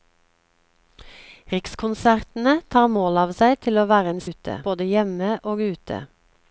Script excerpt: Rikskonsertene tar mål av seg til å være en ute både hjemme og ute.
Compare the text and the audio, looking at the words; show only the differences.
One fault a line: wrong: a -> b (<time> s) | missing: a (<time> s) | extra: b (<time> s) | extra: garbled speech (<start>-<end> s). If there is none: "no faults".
no faults